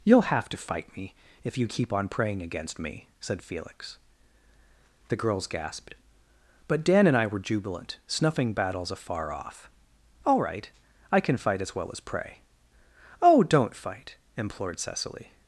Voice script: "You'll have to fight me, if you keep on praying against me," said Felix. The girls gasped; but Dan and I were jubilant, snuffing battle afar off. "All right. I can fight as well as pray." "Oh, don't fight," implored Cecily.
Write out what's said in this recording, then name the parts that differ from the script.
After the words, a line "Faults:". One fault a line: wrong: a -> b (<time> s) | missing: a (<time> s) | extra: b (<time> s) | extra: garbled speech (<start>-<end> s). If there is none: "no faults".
"You'll have to fight me, if you keep on praying against me," said Felix. The girls gasped; but Dan and I were jubilant, snuffing battles afar off. "All right. I can fight as well as pray." "Oh, don't fight," implored Cecily.
Faults:
wrong: battle -> battles (8.5 s)